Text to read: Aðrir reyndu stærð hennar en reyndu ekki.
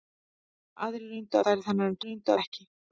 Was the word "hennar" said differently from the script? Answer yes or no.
no